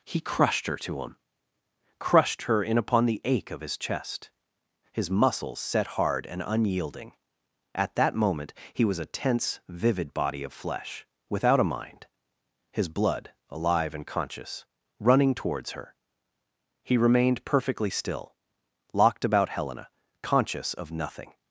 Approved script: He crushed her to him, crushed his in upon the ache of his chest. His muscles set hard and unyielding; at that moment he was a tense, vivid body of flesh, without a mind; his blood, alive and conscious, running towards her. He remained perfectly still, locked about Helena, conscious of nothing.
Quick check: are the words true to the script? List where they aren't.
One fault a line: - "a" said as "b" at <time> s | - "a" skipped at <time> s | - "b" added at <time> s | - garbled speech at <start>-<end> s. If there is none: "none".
- "his" said as "her" at 2.4 s